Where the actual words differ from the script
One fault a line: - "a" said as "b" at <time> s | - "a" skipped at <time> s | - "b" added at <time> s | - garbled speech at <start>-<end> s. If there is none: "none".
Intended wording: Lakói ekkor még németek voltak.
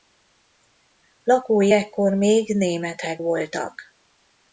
none